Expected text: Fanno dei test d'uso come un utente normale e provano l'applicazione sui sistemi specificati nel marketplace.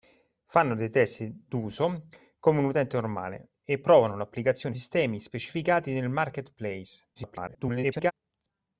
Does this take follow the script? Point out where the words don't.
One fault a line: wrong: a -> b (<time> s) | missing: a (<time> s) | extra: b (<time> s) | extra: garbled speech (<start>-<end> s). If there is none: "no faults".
missing: sui (4.7 s)
extra: garbled speech (7.2-8.1 s)